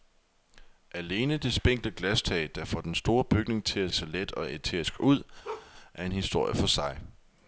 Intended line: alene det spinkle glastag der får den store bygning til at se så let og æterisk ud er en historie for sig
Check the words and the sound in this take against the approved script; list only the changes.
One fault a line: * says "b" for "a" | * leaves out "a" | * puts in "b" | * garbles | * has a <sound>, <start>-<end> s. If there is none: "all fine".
* leaves out "se"
* has a bark, 5.4-5.7 s